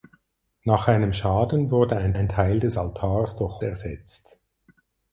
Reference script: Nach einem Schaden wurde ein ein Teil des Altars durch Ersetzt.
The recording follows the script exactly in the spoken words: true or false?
true